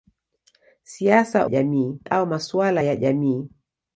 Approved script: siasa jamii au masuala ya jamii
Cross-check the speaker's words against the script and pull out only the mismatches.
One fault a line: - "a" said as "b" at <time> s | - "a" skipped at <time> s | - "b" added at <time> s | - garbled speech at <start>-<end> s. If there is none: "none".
none